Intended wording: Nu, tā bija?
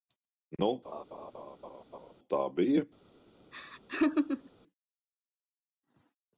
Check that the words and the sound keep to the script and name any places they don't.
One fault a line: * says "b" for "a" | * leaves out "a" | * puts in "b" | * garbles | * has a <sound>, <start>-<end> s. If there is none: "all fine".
* has a laugh, 0.8-2.1 s
* has a laugh, 3.5-4.5 s